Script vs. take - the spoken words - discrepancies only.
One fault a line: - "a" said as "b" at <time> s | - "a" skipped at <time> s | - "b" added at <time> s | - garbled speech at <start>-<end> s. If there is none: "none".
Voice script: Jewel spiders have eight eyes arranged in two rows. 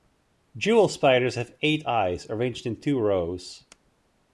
none